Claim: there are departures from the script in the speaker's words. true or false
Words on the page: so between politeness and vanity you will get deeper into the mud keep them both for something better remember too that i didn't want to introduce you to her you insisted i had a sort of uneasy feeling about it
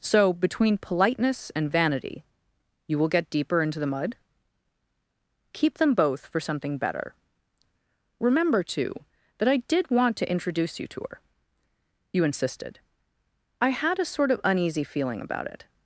true